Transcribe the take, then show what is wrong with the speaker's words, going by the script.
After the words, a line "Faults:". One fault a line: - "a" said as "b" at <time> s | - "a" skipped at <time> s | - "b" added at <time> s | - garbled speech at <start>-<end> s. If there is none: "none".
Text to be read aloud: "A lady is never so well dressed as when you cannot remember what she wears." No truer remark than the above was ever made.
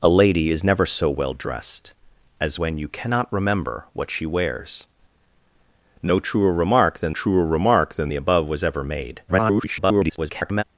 "A lady is never so well dressed as when you cannot remember what she wears." No truer remark than truer remark than the above was ever made. [garbled]
Faults:
- "truer remark than" added at 7.1 s
- garbled speech at 9.3-10.6 s